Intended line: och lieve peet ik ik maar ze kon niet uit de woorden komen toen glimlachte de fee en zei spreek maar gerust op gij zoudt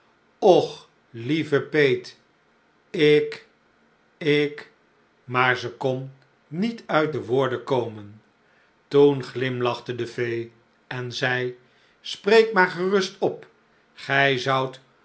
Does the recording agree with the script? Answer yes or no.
yes